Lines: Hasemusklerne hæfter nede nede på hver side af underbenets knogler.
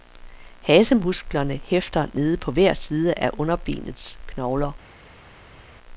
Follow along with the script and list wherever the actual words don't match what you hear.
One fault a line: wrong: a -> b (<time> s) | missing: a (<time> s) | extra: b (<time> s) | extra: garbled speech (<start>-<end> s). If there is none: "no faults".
missing: nede (2.4 s)